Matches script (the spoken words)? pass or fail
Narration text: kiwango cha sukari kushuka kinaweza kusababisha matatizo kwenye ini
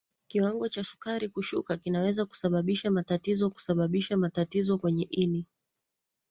fail